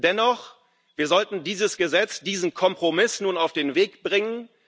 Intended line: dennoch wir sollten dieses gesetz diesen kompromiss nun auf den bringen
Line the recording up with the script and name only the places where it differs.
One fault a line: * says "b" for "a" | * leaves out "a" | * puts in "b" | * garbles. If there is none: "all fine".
* puts in "weg"